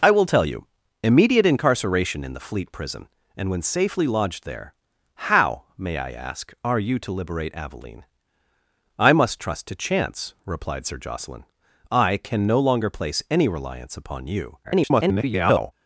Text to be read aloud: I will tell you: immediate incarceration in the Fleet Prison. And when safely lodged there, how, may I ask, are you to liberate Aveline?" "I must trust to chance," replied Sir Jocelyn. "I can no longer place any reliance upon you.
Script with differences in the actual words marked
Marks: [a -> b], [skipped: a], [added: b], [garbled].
I will tell you: immediate incarceration in the Fleet Prison. And when safely lodged there, how, may I ask, are you to liberate Aveline?" "I must trust to chance," replied Sir Jocelyn. "I can no longer place any reliance upon you. [garbled]